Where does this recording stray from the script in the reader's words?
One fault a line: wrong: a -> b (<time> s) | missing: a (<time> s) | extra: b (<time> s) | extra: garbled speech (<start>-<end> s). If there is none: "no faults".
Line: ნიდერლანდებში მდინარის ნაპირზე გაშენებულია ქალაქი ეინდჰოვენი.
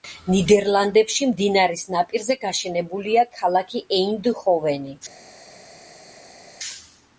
no faults